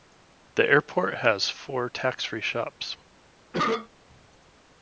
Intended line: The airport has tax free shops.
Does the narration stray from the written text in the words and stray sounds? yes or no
yes